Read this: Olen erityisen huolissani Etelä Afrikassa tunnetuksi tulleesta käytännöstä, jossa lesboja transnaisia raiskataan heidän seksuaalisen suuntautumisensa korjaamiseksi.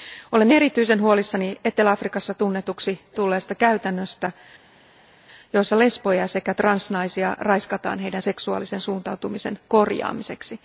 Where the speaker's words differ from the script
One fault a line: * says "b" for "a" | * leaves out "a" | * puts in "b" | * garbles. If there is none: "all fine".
* puts in "sekä"